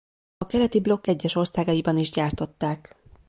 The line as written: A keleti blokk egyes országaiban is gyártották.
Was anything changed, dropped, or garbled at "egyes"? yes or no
no